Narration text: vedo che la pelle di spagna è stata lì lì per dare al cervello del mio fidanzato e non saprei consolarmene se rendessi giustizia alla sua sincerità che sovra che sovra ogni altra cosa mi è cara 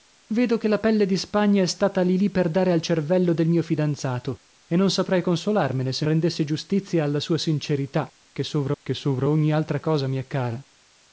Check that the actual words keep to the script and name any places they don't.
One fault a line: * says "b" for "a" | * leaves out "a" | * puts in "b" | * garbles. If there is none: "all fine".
all fine